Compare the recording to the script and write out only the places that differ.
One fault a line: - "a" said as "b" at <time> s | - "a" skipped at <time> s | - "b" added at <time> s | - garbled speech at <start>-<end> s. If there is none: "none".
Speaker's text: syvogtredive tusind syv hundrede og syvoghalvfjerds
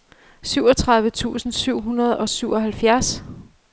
none